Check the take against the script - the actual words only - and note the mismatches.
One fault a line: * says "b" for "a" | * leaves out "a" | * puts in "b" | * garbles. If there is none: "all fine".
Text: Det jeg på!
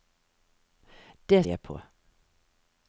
all fine